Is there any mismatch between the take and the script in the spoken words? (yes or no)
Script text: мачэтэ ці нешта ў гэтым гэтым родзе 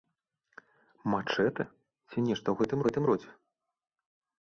no